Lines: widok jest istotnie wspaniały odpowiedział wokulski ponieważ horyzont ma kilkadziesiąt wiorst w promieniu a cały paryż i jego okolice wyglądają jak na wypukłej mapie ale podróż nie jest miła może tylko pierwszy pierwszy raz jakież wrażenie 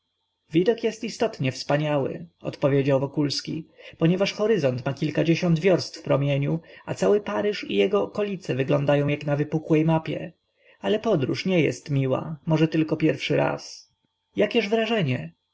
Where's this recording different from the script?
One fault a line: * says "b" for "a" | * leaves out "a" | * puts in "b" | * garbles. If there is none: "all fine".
* leaves out "pierwszy"